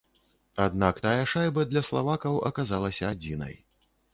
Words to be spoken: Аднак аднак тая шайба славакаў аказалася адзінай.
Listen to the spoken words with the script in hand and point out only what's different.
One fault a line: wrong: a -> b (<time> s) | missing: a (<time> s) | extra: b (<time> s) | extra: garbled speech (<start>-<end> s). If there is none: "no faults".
missing: аднак (1.0 s)
extra: для (1.7 s)